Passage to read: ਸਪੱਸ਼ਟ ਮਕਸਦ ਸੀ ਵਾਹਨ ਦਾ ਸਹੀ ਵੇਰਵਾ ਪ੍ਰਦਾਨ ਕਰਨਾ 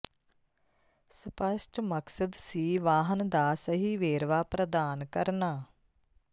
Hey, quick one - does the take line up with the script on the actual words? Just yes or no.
yes